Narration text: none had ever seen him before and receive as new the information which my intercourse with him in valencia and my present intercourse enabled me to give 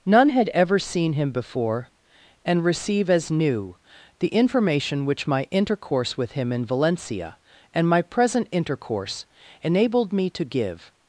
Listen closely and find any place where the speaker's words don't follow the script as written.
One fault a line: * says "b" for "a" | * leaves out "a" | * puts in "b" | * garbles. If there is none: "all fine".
all fine